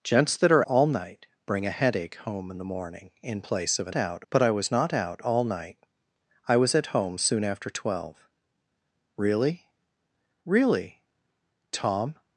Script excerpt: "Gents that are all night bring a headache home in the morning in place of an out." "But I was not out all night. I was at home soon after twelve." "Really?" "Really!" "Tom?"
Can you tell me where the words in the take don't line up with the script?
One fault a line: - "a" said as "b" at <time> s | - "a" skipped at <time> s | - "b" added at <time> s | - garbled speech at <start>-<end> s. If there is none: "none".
none